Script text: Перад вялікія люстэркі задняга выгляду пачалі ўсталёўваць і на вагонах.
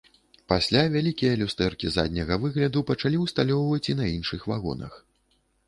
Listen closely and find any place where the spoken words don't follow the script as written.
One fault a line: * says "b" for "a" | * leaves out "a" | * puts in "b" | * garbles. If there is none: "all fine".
* says "Пасля" for "Перад"
* puts in "іншых"